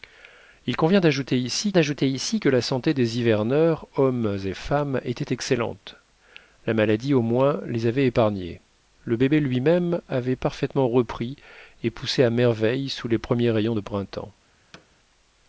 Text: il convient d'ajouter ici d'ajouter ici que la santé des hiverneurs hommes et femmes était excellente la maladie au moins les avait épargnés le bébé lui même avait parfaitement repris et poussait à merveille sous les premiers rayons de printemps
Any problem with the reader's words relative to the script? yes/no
no